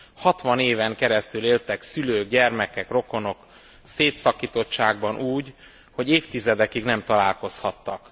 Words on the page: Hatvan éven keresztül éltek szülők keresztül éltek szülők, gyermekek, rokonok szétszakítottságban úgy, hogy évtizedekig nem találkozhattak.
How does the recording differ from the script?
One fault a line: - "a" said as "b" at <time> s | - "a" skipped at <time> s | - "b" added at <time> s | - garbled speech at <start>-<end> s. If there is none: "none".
- "keresztül éltek szülők" skipped at 2.3 s